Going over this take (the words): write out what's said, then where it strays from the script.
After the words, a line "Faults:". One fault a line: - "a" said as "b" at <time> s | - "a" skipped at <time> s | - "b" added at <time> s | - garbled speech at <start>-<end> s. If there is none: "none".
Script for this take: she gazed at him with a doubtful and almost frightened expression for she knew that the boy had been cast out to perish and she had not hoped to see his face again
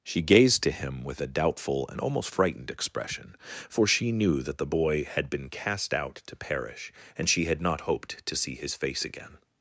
she gazed to him with a doubtful and almost frightened expression for she knew that the boy had been cast out to perish and she had not hoped to see his face again
Faults:
- "at" said as "to" at 0.6 s